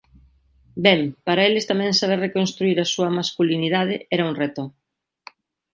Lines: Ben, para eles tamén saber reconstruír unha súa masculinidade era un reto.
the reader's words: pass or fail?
fail